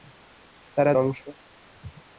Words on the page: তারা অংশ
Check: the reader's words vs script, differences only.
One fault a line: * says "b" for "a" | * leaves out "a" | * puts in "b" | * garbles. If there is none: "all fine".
all fine